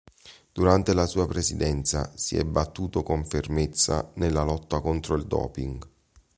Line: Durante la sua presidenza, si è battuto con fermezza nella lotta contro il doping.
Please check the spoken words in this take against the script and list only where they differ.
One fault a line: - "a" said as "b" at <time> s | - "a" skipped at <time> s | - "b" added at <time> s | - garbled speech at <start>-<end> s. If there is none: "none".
none